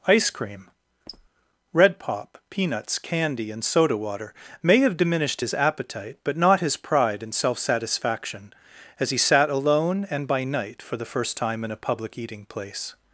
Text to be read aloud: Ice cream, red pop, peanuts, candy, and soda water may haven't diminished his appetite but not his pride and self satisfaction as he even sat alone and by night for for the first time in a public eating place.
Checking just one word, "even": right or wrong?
wrong